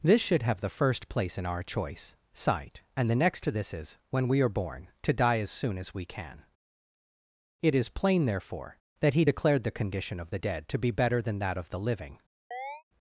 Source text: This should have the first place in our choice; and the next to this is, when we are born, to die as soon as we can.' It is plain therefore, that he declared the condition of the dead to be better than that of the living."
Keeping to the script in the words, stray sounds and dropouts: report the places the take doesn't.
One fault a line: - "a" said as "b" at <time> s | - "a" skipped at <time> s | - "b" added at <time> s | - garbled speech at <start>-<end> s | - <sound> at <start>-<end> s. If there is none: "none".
- "sight" added at 2.3 s
- chirp at 12.5-12.8 s